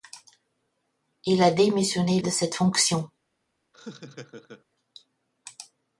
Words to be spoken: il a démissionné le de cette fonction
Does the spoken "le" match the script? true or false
false